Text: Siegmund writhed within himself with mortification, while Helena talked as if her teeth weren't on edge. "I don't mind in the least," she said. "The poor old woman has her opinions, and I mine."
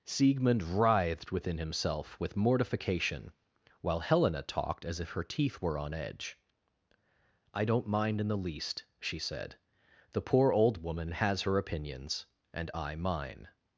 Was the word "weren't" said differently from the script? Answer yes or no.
yes